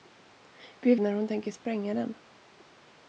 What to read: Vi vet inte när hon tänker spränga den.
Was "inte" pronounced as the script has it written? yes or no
no